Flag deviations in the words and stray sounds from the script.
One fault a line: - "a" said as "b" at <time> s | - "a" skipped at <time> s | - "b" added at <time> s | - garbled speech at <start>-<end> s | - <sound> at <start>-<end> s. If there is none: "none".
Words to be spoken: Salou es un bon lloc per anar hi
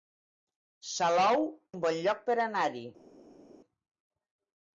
- "es" skipped at 1.4 s